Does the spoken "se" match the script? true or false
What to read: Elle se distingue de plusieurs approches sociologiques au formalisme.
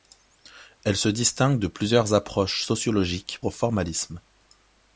true